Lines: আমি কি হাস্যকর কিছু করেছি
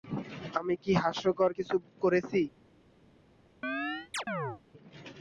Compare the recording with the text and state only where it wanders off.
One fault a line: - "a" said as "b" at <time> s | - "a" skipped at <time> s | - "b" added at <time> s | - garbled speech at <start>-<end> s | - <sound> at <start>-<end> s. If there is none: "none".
- chirp at 3.6-4.6 s